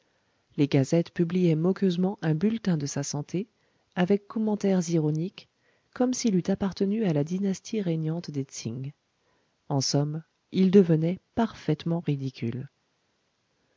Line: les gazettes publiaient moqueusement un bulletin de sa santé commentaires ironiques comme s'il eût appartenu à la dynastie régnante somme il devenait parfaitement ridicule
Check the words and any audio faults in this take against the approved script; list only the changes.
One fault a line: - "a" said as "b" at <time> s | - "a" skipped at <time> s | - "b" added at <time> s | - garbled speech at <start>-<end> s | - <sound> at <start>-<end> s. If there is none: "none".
- "avec" added at 4.0 s
- "des tsing en" added at 8.3 s